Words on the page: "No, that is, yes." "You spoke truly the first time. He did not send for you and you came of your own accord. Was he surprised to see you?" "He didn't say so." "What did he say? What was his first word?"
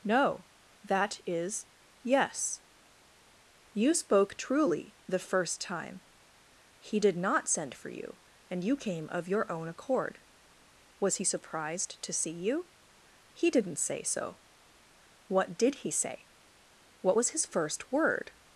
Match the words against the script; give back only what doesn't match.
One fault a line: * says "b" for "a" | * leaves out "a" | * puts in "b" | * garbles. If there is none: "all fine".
all fine